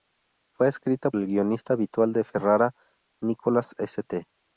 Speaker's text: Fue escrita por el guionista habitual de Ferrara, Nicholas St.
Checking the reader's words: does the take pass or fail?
fail